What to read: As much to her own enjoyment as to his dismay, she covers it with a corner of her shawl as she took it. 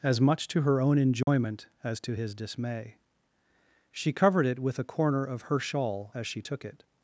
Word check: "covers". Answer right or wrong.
wrong